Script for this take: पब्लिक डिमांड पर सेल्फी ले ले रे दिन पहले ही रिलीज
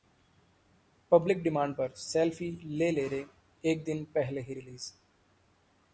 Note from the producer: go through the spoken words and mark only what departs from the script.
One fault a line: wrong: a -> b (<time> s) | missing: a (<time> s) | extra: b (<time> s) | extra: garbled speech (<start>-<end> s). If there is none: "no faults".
extra: एक (3.6 s)